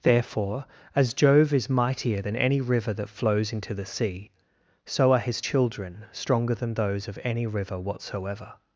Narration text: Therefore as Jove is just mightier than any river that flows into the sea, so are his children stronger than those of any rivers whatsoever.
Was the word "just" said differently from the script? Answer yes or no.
yes